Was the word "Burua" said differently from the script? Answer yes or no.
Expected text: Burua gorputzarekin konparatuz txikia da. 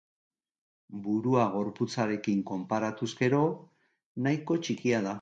no